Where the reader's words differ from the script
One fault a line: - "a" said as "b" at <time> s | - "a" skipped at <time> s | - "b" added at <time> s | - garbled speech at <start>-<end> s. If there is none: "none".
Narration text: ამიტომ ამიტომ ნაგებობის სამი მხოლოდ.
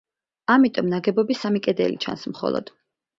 - "ამიტომ" skipped at 0.9 s
- "კედელი ჩანს" added at 1.7 s